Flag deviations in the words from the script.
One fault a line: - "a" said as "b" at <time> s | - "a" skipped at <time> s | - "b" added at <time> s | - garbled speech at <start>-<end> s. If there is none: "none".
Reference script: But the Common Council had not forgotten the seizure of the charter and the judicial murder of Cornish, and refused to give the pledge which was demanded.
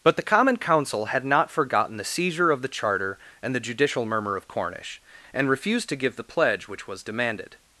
- "murder" said as "murmur" at 4.1 s